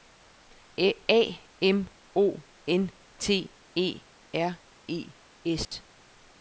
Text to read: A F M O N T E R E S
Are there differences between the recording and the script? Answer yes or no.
yes